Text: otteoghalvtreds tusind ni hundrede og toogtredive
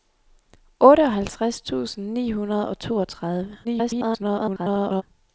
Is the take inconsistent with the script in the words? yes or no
yes